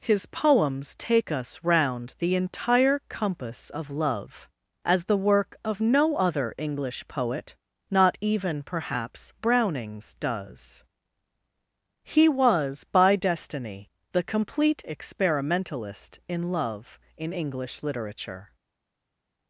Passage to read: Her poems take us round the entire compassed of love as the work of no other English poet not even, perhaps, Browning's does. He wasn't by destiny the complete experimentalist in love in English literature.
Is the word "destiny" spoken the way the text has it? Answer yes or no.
yes